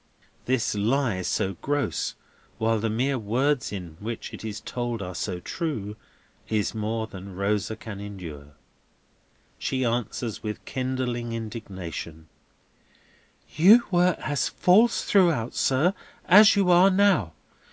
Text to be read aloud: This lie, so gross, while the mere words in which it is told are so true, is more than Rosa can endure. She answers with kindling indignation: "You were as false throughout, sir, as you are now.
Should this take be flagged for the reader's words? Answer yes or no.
no